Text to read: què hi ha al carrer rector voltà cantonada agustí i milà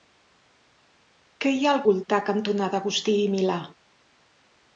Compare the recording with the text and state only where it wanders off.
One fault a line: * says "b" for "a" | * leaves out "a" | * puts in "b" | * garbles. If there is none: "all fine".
* leaves out "carrer rector"